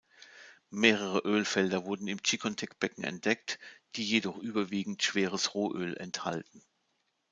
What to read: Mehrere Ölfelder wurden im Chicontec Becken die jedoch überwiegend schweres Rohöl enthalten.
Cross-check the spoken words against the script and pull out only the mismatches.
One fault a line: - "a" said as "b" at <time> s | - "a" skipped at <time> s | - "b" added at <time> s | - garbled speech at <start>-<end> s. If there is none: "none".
- "entdeckt" added at 3.0 s